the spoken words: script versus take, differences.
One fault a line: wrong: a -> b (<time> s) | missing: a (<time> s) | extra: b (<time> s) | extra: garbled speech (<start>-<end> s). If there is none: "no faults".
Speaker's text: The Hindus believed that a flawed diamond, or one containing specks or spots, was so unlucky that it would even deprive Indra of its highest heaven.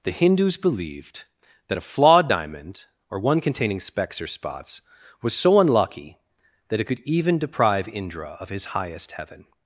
wrong: would -> could (6.8 s)
wrong: its -> his (8.5 s)